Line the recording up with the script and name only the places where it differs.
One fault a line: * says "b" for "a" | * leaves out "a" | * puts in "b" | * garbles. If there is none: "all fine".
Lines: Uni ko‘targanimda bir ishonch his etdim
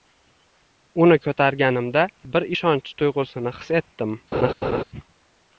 * puts in "tuyg‘usini"